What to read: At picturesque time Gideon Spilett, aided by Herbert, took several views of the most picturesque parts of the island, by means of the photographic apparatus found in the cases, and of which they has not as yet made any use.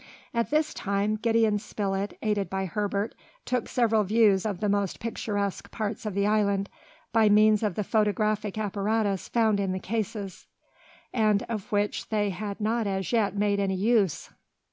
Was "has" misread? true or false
true